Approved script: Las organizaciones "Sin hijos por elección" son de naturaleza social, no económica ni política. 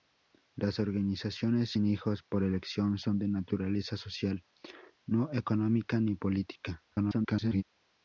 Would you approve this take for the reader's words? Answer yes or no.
no